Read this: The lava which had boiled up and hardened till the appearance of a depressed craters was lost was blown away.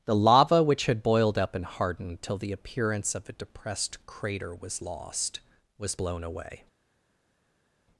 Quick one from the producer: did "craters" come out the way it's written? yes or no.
no